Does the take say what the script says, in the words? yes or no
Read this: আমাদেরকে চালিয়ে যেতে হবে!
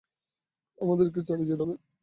yes